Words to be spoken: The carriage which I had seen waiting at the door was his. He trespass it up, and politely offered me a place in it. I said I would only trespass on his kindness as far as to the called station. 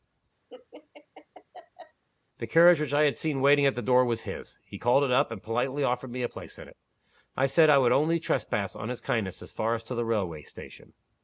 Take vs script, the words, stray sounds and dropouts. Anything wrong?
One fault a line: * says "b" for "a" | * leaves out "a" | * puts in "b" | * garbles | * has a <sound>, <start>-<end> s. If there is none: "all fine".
* has a laugh, 0.5-2.0 s
* says "called" for "trespass"
* says "railway" for "called"